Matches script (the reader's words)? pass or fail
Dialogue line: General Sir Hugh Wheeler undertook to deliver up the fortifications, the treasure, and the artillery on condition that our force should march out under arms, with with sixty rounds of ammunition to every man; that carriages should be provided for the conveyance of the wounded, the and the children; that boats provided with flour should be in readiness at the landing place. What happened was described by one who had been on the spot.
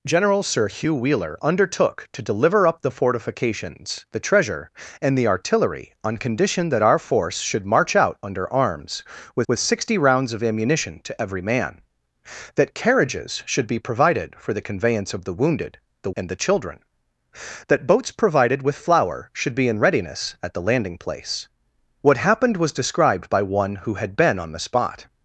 pass